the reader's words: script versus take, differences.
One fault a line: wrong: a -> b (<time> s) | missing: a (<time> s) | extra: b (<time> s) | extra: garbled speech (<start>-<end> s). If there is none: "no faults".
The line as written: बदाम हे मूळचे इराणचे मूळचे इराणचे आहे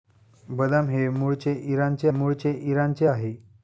no faults